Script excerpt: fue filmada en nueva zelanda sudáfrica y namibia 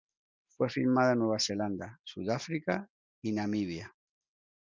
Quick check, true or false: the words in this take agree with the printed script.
true